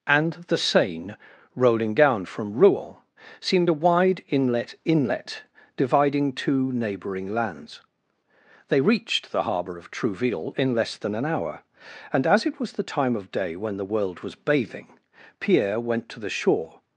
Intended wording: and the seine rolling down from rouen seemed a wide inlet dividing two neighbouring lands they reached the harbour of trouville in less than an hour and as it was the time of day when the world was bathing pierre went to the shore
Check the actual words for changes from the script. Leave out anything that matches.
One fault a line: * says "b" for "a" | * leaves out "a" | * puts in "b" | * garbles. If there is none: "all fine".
* puts in "inlet"